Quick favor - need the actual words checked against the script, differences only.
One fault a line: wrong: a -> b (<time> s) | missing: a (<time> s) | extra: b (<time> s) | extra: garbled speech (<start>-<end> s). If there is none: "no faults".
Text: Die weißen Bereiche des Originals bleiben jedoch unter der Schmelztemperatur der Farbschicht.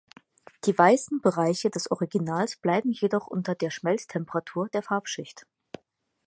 no faults